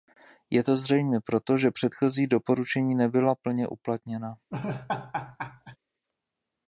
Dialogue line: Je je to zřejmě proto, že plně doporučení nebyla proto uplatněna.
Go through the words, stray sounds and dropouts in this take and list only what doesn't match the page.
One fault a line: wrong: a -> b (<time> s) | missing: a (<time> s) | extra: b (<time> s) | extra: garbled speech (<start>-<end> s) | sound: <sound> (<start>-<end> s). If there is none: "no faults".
missing: je (0.6 s)
wrong: plně -> předchozí (1.7 s)
wrong: proto -> plně (3.4 s)
sound: laugh (4.5-5.8 s)